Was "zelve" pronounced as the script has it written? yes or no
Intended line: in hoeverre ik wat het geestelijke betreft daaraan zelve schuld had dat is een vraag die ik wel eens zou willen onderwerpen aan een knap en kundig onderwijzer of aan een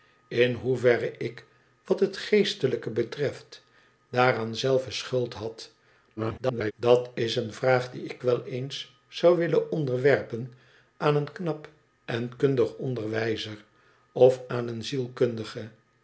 yes